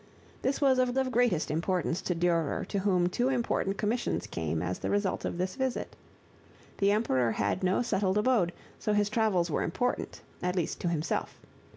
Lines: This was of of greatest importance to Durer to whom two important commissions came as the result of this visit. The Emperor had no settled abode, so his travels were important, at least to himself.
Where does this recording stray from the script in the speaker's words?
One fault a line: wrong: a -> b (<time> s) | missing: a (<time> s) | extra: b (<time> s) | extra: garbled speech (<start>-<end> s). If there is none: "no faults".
no faults